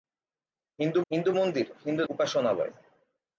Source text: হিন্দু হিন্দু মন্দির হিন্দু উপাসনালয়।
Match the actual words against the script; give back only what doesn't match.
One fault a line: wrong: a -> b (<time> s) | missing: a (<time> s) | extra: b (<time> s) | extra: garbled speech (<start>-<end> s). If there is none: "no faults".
no faults